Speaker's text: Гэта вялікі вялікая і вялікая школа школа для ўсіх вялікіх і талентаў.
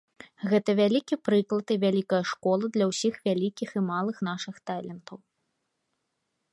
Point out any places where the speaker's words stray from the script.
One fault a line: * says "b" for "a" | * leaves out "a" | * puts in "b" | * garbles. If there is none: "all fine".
* says "прыклад" for "вялікая"
* leaves out "школа"
* puts in "малых нашых"